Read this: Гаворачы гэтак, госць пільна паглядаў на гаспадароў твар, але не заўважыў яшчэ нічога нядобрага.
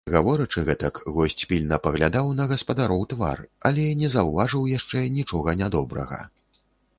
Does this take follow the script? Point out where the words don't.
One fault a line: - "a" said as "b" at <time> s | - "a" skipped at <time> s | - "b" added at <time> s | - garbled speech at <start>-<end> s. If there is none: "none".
none